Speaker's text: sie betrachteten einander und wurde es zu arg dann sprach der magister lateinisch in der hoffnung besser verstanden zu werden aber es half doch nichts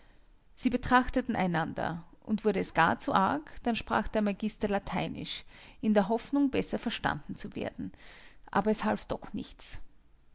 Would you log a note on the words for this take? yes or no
yes